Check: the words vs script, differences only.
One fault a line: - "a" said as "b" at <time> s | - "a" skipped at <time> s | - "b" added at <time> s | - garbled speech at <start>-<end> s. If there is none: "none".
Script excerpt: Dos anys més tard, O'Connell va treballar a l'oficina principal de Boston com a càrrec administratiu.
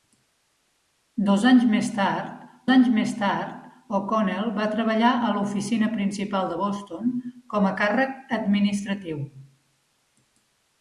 - "anys més tard" added at 2.7 s